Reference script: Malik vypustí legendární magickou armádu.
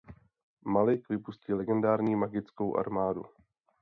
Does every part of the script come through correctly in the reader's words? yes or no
yes